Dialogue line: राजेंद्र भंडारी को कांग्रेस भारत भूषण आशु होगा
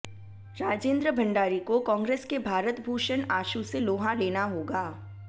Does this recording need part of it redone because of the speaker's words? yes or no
yes